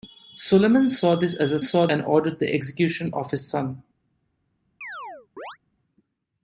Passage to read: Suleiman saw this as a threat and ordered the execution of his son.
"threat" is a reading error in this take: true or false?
true